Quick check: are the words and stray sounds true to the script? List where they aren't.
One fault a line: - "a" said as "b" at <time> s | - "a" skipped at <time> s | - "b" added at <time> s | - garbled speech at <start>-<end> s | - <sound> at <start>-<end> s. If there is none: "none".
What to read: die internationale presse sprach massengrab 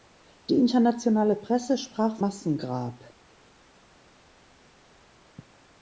none